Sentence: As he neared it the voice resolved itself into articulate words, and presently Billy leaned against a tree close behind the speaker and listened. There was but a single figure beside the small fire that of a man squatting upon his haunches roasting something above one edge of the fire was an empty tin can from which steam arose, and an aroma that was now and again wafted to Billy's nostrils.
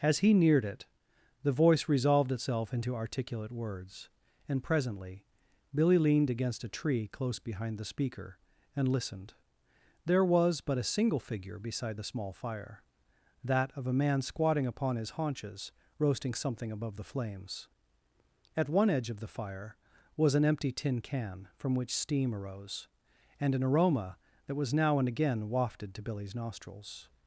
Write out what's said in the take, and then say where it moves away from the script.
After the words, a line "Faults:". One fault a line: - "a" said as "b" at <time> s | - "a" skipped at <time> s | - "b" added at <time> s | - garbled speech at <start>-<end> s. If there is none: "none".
As he neared it the voice resolved itself into articulate words, and presently Billy leaned against a tree close behind the speaker and listened. There was but a single figure beside the small fire that of a man squatting upon his haunches roasting something above the flames. At one edge of the fire was an empty tin can from which steam arose, and an aroma that was now and again wafted to Billy's nostrils.
Faults:
- "the flames At" added at 16.9 s